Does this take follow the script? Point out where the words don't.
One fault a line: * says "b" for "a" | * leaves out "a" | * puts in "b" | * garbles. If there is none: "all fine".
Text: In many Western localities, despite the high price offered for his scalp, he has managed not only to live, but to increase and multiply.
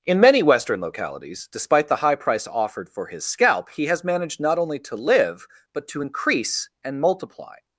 all fine